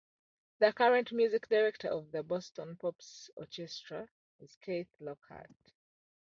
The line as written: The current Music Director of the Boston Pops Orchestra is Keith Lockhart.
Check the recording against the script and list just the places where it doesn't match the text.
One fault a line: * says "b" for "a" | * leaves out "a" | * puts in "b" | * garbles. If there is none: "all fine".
all fine